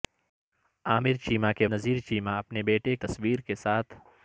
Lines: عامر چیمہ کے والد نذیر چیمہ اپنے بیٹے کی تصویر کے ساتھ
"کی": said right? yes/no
no